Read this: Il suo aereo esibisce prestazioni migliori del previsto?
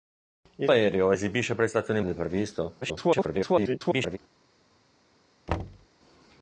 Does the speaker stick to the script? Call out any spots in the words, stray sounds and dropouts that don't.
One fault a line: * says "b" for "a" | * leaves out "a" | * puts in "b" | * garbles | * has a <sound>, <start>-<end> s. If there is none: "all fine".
* leaves out "suo"
* leaves out "migliori"
* garbles
* has a thud, 5.5-5.9 s